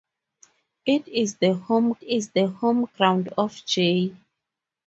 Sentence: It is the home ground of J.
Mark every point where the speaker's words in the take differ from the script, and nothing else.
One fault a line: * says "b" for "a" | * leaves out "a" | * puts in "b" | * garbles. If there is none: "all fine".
* puts in "is the home"